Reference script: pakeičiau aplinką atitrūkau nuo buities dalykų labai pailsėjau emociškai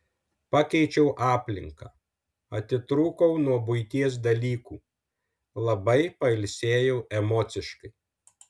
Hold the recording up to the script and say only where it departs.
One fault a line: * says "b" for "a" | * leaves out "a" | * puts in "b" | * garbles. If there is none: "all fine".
all fine